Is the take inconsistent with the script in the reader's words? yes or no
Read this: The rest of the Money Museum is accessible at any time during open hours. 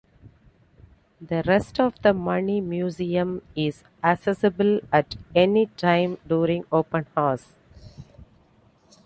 no